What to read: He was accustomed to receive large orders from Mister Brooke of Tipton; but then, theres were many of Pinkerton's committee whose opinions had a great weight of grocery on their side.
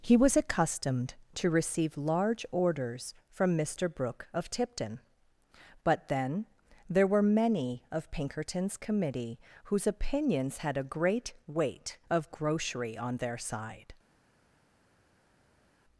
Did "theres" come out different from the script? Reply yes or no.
yes